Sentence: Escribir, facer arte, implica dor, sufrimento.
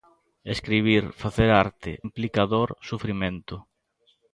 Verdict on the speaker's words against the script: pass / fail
pass